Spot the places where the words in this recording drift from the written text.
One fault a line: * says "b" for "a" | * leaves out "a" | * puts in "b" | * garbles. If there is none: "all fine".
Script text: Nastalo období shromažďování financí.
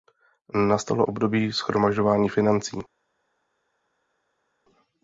all fine